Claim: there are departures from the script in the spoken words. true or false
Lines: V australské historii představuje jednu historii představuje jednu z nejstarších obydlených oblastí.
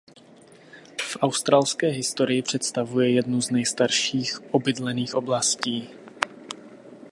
true